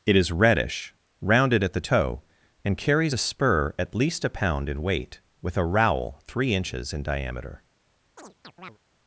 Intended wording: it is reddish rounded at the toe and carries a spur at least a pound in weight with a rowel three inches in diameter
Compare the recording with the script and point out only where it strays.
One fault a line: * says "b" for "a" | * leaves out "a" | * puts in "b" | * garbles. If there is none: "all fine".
all fine